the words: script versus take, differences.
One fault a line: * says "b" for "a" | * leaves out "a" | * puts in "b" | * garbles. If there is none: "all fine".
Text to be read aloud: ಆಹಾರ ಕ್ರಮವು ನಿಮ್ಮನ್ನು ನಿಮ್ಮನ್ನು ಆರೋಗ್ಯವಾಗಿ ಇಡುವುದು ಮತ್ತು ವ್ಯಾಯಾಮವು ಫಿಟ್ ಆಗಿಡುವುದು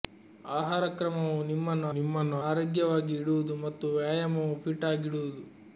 all fine